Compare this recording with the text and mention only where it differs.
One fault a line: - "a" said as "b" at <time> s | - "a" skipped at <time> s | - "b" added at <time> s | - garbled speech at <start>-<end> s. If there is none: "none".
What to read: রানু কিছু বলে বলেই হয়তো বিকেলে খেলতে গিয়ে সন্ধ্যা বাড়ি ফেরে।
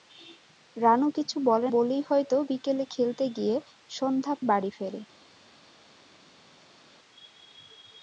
none